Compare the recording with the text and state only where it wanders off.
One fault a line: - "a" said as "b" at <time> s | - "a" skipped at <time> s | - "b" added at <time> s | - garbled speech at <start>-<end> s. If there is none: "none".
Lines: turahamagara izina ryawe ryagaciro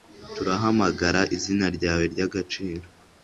none